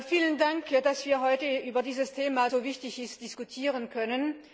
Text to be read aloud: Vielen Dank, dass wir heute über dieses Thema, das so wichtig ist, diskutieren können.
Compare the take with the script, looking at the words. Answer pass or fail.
fail